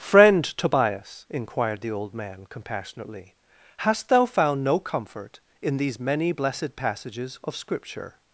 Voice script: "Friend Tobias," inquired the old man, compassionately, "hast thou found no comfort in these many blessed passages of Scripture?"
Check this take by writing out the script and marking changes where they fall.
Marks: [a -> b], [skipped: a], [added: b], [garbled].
"Friend Tobias," inquired the old man, compassionately, "hast thou found no comfort in these many blessed passages of Scripture?"